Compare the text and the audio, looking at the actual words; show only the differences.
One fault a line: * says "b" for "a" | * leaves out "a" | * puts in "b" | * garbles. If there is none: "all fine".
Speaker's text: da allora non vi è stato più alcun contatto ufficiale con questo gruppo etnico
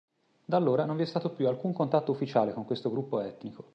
all fine